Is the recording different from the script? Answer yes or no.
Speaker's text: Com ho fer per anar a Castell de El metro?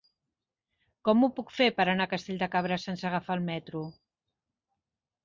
yes